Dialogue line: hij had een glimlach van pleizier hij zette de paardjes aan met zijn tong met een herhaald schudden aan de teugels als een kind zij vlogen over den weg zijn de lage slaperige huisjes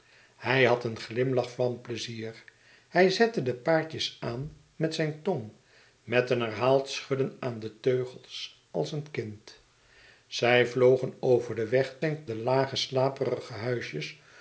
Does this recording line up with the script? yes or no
yes